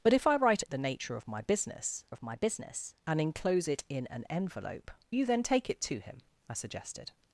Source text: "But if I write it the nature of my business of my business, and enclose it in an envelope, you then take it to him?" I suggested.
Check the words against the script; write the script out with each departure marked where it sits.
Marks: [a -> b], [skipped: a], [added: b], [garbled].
"But if I write it the nature of my business of my business, and enclose it in an envelope, you then take it to him?" I suggested.